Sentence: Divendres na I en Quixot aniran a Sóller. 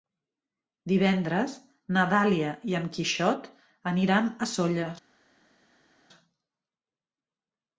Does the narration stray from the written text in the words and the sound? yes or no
yes